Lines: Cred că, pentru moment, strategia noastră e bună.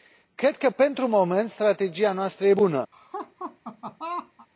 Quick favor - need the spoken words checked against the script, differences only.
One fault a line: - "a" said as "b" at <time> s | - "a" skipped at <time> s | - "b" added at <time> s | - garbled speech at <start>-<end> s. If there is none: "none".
none